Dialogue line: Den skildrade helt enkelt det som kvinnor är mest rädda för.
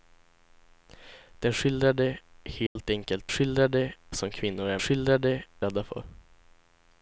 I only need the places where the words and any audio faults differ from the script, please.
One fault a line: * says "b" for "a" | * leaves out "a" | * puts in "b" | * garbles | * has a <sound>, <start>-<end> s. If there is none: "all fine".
* has a dropout, 2.7-2.8 s
* says "skildrade" for "det"
* says "skildrade" for "mest"